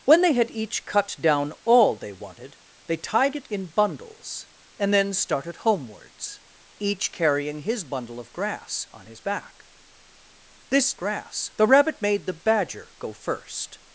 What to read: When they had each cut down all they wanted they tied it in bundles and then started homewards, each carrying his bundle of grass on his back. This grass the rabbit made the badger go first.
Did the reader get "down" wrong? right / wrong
right